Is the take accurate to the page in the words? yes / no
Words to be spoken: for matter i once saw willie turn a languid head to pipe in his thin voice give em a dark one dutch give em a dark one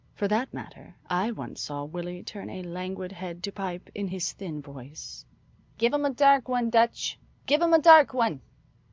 no